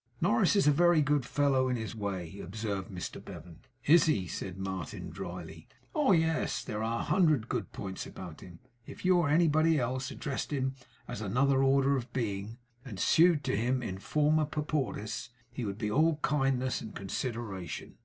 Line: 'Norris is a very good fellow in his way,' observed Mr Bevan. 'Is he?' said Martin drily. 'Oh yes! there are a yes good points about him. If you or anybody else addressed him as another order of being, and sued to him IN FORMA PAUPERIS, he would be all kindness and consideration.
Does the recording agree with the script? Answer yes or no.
no